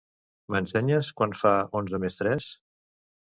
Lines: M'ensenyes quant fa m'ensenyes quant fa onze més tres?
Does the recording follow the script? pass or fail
fail